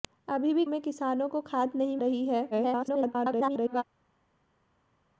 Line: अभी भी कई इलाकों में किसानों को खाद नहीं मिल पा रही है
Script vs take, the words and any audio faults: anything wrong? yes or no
yes